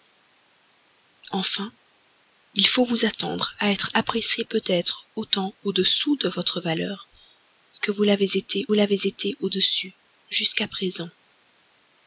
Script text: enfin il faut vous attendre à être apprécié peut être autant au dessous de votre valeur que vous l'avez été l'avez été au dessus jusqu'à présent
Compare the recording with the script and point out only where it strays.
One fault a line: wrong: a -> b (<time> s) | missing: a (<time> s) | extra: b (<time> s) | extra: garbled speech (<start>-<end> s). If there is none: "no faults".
no faults